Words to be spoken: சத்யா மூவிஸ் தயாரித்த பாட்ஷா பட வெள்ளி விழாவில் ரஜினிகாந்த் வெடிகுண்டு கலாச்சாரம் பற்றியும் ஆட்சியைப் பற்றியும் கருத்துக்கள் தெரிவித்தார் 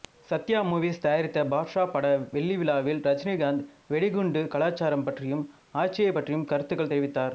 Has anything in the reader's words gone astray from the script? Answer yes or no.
no